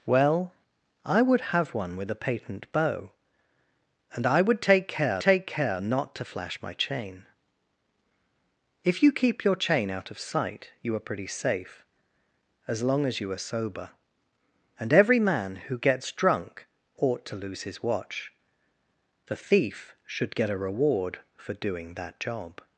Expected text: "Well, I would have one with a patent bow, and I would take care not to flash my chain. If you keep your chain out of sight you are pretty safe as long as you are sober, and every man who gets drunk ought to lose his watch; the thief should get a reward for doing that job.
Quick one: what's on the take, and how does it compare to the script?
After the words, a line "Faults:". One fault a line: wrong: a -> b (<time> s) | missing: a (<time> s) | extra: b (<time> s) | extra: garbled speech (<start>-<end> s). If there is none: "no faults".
"Well, I would have one with a patent bow, and I would take care take care not to flash my chain. If you keep your chain out of sight you are pretty safe as long as you are sober, and every man who gets drunk ought to lose his watch; the thief should get a reward for doing that job.
Faults:
extra: take care (5.2 s)